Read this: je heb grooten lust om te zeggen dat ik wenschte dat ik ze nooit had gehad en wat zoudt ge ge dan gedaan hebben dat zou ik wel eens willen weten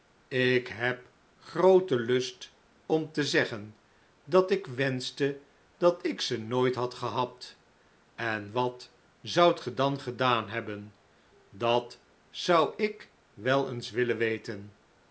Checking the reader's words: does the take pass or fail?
fail